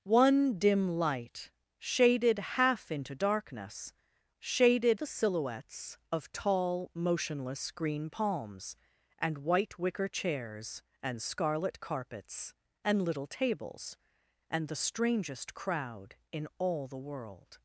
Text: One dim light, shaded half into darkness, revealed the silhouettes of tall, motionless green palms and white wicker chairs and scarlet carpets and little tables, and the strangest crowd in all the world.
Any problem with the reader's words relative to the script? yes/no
yes